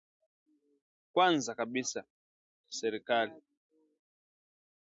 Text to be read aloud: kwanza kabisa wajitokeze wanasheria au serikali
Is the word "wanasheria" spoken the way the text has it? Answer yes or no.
no